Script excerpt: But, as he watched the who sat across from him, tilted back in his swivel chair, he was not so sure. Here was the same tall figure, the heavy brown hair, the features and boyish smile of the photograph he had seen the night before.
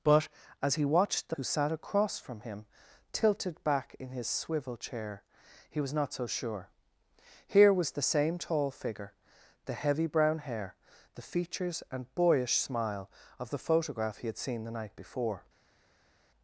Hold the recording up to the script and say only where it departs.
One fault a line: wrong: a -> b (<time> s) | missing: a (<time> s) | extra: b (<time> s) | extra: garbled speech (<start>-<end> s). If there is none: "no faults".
no faults